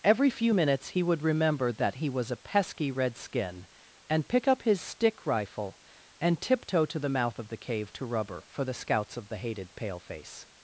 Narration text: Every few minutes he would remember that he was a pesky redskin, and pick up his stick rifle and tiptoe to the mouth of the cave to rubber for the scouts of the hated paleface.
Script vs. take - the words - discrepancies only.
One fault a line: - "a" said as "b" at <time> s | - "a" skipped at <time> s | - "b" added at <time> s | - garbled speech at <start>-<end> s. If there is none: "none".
none